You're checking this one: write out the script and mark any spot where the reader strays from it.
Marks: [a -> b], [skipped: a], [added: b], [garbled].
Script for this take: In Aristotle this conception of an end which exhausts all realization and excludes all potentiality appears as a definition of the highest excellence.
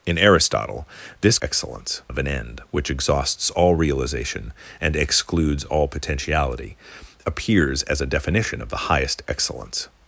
In Aristotle this [conception -> excellence] of an end which exhausts all realization and excludes all potentiality appears as a definition of the highest excellence.